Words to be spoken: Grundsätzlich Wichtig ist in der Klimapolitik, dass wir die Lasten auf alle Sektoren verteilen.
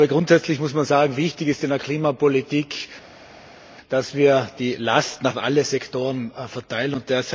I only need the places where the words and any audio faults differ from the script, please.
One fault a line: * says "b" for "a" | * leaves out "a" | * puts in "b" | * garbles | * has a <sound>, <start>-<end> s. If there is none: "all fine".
* puts in "muss man sagen"